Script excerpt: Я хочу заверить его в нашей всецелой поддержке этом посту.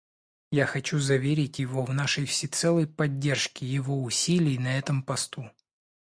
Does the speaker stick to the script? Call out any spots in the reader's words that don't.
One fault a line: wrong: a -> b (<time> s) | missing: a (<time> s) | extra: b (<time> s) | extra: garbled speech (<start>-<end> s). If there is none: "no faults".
extra: его усилий на (3.7 s)